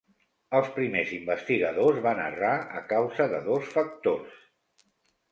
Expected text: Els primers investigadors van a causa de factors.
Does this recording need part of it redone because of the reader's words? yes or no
yes